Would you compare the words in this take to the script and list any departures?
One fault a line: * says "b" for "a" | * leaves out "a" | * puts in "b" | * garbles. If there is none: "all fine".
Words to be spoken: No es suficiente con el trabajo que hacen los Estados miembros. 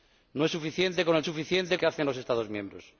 * says "suficiente" for "trabajo"